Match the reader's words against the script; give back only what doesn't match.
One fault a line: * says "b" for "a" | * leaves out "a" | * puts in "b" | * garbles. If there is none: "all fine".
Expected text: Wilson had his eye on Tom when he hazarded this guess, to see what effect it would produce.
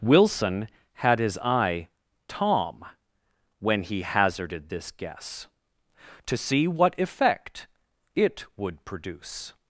* leaves out "on"